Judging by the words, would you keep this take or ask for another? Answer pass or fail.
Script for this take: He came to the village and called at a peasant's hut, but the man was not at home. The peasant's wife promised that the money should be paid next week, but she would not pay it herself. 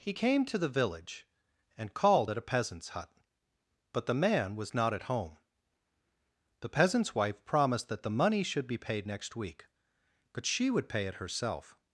fail